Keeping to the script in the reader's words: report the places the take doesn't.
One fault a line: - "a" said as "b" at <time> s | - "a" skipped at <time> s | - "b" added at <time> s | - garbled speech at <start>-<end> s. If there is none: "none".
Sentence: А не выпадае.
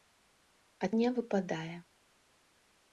none